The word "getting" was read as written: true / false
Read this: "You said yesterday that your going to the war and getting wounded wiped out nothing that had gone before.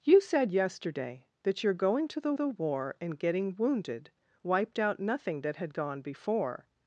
true